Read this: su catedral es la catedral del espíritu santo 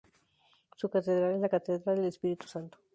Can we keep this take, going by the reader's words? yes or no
yes